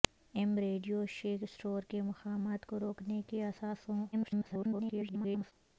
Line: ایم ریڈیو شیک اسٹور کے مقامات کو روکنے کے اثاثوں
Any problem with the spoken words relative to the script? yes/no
yes